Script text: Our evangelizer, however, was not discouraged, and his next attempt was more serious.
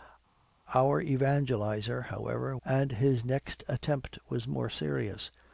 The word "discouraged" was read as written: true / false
false